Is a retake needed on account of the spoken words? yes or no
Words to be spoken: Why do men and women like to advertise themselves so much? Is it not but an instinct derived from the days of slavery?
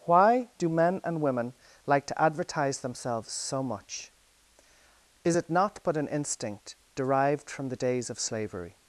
no